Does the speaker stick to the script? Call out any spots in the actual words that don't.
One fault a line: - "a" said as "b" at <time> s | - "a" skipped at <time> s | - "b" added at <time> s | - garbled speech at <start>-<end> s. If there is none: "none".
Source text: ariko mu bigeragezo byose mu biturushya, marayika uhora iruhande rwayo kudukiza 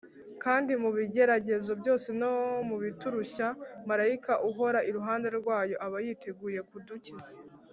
- "ariko" said as "kandi" at 0.4 s
- "no" added at 2.2 s
- "aba yiteguye" added at 5.9 s